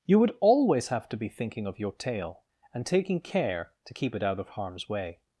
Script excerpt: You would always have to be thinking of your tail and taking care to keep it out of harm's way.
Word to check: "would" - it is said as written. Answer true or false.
true